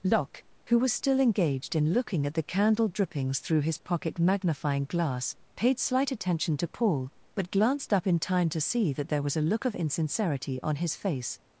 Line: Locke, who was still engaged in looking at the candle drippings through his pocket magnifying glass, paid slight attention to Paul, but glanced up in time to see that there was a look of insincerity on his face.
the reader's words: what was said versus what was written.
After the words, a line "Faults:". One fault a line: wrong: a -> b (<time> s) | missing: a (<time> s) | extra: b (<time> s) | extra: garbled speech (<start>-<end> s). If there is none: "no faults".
Locke, who was still engaged in looking at the candle drippings through his pocket magnifying glass, paid slight attention to Paul, but glanced up in time to see that there was a look of insincerity on his face.
Faults:
no faults